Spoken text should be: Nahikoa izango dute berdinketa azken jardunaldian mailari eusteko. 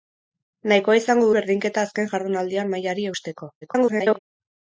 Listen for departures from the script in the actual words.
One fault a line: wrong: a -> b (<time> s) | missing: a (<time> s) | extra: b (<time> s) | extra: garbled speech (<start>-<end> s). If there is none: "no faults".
missing: dute (1.3 s)
extra: garbled speech (3.6-4.2 s)